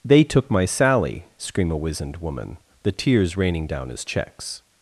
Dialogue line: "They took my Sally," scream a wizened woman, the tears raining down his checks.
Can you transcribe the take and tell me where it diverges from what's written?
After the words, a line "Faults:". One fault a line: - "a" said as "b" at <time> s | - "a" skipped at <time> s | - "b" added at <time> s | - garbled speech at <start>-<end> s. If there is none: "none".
"They took my Sally," scream a wizened woman, the tears raining down his checks.
Faults:
none